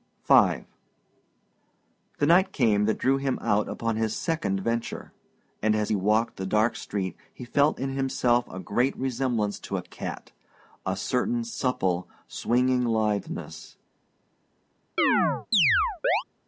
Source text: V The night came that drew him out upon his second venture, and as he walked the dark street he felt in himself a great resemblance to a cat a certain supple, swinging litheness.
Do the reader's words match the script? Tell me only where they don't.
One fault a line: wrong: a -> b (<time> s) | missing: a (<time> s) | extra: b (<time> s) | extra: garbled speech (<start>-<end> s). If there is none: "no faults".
no faults